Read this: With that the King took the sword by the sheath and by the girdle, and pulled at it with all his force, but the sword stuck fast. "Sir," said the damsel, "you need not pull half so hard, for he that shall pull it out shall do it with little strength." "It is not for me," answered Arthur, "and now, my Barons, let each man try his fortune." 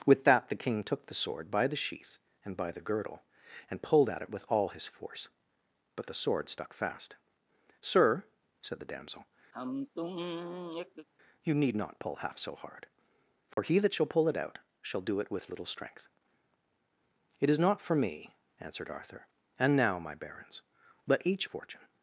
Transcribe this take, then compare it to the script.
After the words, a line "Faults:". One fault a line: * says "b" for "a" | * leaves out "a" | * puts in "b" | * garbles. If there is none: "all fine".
With that the King took the sword by the sheath and by the girdle, and pulled at it with all his force, but the sword stuck fast. "Sir," said the damsel, "you need not pull half so hard, for he that shall pull it out shall do it with little strength." "It is not for me," answered Arthur, "and now, my Barons, let each fortune."
Faults:
* leaves out "man try his"